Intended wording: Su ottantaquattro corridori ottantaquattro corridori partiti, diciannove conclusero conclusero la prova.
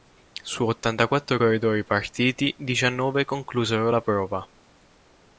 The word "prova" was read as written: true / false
true